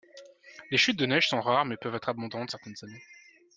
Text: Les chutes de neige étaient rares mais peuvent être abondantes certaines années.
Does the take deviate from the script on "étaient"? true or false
true